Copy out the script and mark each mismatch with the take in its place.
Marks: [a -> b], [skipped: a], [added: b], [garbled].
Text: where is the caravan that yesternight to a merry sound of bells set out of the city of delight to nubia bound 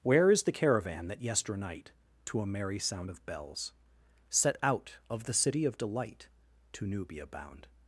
where is the caravan that yesternight to a merry sound of bells set out of the city of delight to nubia bound